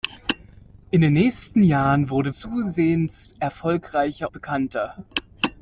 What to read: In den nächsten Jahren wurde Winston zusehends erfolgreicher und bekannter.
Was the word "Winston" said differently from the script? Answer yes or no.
yes